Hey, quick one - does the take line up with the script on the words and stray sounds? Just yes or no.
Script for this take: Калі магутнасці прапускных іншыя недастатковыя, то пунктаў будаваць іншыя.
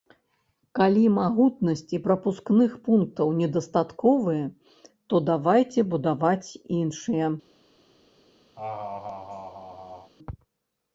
no